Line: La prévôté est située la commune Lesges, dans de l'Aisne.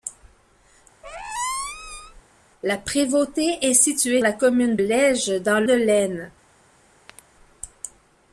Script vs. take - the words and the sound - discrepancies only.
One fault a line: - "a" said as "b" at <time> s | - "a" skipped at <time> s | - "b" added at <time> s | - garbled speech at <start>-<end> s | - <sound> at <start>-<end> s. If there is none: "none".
- squeak at 1.0-2.2 s
- chirp at 7.1-7.3 s